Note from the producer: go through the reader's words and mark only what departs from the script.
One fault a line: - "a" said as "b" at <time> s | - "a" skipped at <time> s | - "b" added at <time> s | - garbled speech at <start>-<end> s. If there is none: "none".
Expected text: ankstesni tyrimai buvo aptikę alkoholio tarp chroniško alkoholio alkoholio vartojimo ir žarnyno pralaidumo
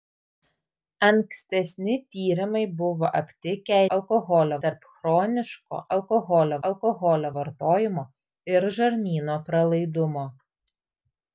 none